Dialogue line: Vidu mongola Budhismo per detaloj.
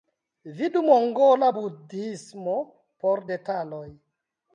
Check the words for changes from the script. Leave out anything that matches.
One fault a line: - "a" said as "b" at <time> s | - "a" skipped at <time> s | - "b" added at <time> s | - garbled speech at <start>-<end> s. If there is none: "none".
- "per" said as "por" at 3.0 s